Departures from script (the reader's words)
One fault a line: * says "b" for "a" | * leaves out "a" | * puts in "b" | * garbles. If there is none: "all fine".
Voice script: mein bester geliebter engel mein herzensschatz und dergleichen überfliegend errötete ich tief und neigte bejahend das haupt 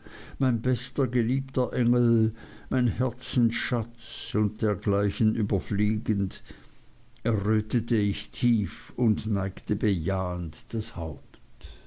all fine